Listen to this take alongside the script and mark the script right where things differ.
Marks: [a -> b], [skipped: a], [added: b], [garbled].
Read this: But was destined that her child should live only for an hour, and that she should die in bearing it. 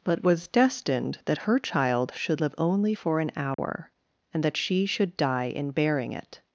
But was destined that her child should live only for an hour, and that she should die in bearing it.